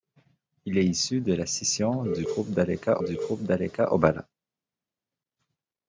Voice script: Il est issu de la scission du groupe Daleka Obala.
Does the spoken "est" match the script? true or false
true